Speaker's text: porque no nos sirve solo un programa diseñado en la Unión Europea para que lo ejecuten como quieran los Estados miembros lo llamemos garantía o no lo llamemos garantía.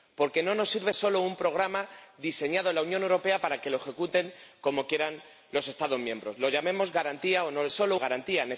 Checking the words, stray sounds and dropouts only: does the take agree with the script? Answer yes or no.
no